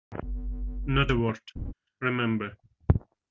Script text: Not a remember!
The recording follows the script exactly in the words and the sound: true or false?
false